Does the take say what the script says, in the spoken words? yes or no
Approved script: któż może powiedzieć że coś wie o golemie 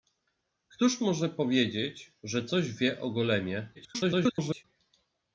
no